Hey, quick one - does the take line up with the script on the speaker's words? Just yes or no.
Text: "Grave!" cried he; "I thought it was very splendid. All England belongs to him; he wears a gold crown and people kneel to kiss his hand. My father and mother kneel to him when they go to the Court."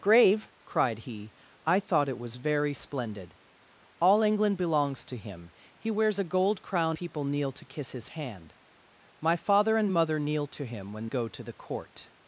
no